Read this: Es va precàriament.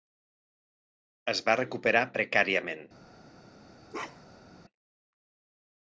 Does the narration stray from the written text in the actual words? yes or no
yes